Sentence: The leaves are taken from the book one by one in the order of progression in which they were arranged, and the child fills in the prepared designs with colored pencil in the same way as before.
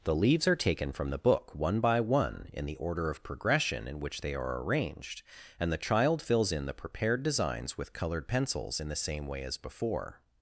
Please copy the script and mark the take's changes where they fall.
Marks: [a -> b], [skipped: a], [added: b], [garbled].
The leaves are taken from the book one by one in the order of progression in which they [were -> are] arranged, and the child fills in the prepared designs with colored [pencil -> pencils] in the same way as before.